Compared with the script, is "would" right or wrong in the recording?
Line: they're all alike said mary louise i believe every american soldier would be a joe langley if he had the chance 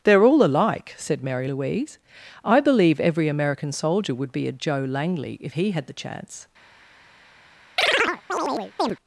right